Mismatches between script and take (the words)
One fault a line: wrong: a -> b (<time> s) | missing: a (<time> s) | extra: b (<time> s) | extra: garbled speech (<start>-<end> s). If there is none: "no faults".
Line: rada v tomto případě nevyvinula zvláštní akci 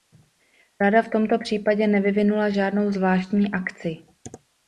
extra: žádnou (2.5 s)